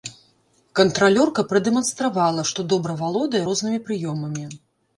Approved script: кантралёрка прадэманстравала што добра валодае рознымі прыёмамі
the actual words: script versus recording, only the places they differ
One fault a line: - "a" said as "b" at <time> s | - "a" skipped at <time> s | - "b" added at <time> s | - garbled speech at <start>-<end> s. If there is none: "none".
none